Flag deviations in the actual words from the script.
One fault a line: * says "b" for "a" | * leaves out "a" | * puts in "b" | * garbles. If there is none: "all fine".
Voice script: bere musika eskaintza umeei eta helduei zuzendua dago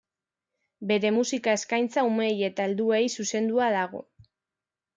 all fine